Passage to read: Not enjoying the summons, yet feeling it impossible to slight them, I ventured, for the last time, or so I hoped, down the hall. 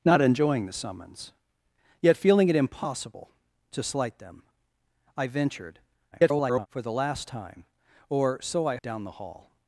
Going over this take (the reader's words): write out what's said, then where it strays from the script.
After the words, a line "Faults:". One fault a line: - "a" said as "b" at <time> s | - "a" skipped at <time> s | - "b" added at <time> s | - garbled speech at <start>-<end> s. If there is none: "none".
Not enjoying the summons, yet feeling it impossible to slight them, I ventured, [garbled] for the last time, or so I down the hall.
Faults:
- garbled speech at 6.1-6.7 s
- "hoped" skipped at 8.8 s